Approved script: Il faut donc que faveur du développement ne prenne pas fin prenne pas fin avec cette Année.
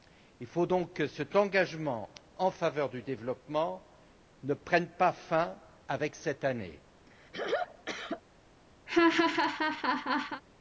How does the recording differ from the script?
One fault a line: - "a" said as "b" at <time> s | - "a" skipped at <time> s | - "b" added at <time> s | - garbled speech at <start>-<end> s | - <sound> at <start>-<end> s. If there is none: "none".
- "cet engagement en" added at 1.1 s
- "prenne pas fin" skipped at 5.6 s
- throat clearing at 7.1-8.2 s
- laugh at 8.9-10.4 s